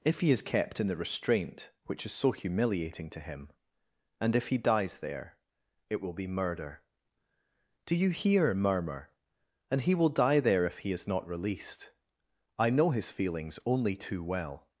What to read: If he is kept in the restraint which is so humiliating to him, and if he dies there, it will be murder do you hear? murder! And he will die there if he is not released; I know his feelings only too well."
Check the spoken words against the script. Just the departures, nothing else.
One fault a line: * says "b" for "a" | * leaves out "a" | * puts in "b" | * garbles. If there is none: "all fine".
* says "murmur" for "murder"